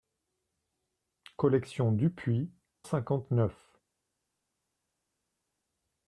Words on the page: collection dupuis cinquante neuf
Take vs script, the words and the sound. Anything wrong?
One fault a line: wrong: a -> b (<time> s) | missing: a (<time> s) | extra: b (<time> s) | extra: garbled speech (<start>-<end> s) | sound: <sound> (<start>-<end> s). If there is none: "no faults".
no faults